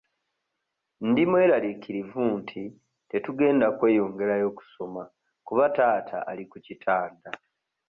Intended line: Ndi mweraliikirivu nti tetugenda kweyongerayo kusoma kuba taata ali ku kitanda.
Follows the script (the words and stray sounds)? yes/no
yes